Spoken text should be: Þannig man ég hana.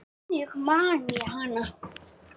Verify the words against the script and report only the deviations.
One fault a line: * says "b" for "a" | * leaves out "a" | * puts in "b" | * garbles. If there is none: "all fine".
all fine